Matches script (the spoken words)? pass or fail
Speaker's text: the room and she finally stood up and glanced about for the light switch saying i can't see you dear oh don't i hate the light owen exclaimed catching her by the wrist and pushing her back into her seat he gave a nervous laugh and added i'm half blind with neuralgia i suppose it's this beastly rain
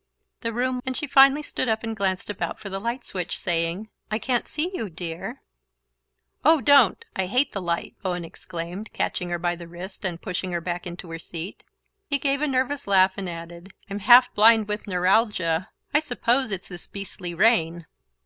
pass